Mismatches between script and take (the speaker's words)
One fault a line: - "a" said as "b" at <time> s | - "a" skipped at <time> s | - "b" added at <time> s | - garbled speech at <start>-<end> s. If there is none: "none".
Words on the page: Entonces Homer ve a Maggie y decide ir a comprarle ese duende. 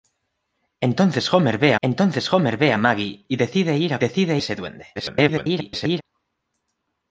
- "entonces Homer ve" added at 1.8 s
- "comprarle" said as "decide" at 4.0 s
- garbled speech at 5.0-6.0 s